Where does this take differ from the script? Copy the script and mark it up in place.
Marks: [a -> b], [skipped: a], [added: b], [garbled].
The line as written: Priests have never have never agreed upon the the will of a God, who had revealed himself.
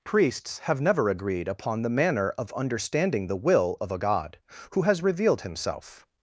Priests have never [skipped: have never] agreed upon the [added: manner of understanding] the will of a God, who [had -> has] revealed himself.